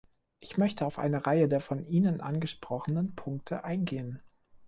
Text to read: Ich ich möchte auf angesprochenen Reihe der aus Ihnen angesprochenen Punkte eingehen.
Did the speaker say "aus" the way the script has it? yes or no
no